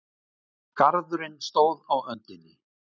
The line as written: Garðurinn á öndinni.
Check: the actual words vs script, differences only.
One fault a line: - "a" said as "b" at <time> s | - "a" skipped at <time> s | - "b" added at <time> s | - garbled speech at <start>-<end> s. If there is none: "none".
- "stóð" added at 1.5 s